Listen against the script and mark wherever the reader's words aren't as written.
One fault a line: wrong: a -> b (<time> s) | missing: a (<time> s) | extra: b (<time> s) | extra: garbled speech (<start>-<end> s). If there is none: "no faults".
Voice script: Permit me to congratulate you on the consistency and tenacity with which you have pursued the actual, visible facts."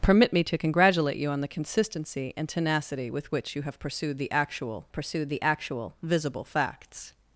extra: pursued the actual (4.9 s)